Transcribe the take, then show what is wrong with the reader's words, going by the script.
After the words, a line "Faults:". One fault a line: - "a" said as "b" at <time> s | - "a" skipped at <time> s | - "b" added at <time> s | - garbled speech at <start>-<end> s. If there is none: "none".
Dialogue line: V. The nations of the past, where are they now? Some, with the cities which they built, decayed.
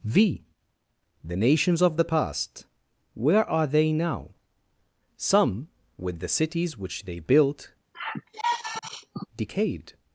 V. The nations of the past, where are they now? Some, with the cities which they built, decayed.
Faults:
none